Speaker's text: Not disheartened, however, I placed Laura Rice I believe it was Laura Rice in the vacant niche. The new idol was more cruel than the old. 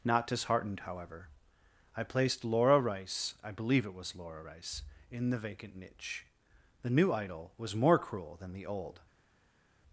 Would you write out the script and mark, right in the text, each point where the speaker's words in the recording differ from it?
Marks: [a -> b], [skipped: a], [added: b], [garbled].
Not disheartened, however, I placed Laura Rice I believe it was Laura Rice in the vacant niche. The new idol was more cruel than the old.